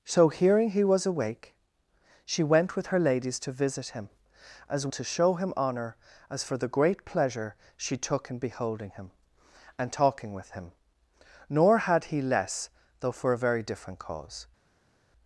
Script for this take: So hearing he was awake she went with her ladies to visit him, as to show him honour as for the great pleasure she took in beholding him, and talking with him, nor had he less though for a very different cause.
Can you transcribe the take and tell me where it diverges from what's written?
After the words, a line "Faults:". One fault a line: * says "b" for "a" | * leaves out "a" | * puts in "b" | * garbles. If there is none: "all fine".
So hearing he was awake she went with her ladies to visit him, as to show him honour as for the great pleasure she took in beholding him, and talking with him, nor had he less though for a very different cause.
Faults:
all fine